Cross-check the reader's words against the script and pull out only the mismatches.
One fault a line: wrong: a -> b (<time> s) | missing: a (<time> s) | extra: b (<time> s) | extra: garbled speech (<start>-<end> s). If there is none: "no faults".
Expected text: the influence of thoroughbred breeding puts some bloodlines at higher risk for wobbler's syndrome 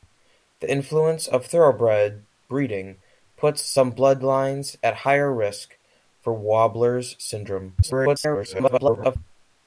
extra: garbled speech (7.8-9.2 s)